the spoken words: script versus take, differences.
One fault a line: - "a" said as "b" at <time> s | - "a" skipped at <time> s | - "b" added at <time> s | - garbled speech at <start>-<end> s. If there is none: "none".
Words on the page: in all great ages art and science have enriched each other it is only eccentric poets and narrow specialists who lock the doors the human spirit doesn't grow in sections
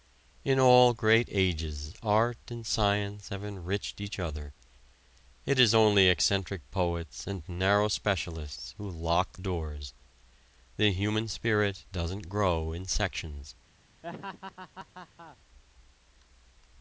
- "the" skipped at 9.4 s